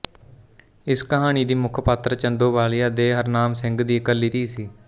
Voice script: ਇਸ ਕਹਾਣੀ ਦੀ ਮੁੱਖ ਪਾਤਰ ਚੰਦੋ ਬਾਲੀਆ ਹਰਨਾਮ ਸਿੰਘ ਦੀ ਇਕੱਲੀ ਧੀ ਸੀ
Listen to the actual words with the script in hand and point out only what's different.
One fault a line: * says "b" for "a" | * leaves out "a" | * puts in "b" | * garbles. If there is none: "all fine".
* puts in "ਦੇ"